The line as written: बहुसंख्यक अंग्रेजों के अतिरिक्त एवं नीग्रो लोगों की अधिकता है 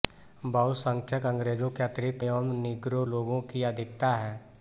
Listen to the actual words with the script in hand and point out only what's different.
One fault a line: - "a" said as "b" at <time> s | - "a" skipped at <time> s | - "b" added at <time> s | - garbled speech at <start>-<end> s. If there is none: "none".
none